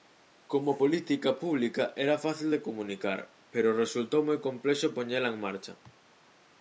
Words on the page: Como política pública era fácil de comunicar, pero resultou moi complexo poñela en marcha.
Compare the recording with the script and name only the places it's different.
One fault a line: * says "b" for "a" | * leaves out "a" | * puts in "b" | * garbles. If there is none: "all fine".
all fine